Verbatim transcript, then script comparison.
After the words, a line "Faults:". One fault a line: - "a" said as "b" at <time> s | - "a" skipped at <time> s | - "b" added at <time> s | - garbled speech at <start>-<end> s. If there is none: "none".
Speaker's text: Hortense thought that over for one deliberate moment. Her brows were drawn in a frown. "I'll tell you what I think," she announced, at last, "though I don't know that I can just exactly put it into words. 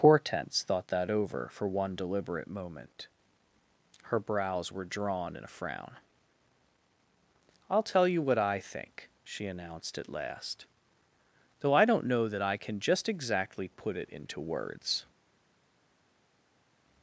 Hortense thought that over for one deliberate moment. Her brows were drawn in a frown. "I'll tell you what I think," she announced, at last, "though I don't know that I can just exactly put it into words.
Faults:
none